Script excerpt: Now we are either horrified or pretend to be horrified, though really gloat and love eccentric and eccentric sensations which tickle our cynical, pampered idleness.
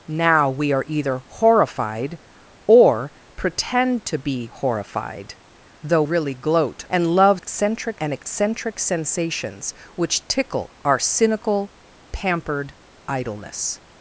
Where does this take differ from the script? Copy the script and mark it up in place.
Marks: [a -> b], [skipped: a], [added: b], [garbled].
Now we are either horrified or pretend to be horrified, though really gloat and love eccentric and eccentric sensations which tickle our cynical, pampered idleness.